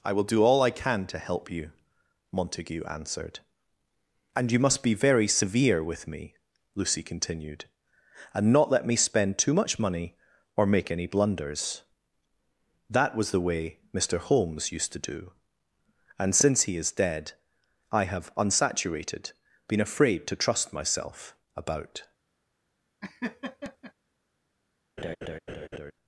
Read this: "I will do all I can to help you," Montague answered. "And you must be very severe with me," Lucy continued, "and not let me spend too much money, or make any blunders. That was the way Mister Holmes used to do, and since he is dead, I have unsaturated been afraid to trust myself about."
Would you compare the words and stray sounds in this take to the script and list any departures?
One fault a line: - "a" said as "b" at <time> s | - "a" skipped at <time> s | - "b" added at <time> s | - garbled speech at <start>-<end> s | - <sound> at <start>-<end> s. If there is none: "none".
- laugh at 23.0-23.9 s
- laugh at 25.0-25.9 s